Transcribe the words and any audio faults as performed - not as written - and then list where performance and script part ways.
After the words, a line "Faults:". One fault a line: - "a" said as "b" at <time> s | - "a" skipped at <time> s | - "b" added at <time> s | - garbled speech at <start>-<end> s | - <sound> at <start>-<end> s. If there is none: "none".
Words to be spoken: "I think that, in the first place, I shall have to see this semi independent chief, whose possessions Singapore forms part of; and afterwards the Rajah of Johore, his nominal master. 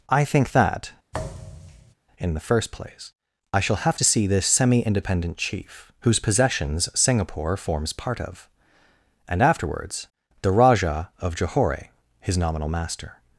"I think that, in the first place, I shall have to see this semi independent chief, whose possessions Singapore forms part of; and afterwards the Rajah of Johore, his nominal master.
Faults:
- thud at 1.1-1.9 s